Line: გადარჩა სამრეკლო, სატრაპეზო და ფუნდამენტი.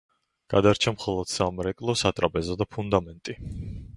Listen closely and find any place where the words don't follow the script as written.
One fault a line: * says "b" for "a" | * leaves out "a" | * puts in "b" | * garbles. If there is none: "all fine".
* puts in "მხოლოდ"